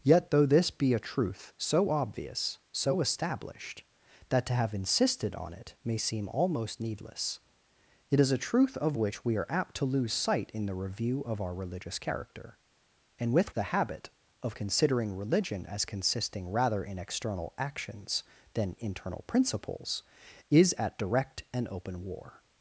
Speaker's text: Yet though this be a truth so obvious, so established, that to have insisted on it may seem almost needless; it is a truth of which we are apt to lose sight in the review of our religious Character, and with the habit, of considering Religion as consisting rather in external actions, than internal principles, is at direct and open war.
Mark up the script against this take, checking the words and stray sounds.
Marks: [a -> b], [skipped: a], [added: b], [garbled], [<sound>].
Yet though this be a truth so obvious, so established, that to have insisted on it may seem almost needless; it is a truth of which we are apt to lose sight in the review of our religious Character, and with the habit, of considering Religion as consisting rather in external actions, than internal principles, is at direct and open war.